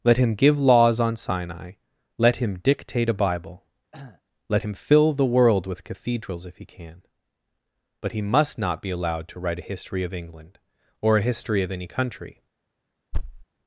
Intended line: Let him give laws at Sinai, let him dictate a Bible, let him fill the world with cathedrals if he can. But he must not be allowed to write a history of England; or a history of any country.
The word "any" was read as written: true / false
true